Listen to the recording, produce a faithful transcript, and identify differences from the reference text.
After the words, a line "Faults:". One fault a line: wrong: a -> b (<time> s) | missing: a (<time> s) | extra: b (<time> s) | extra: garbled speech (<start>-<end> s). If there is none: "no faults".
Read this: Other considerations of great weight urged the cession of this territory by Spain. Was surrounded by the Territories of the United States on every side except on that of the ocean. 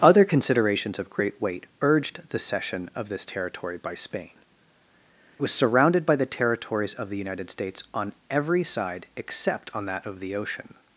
Other considerations of great weight urged the cession of this territory by Spain. Was surrounded by the Territories of the United States on every side except on that of the ocean.
Faults:
no faults